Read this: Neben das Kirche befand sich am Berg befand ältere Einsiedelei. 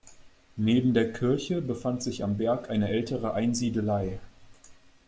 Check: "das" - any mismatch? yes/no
yes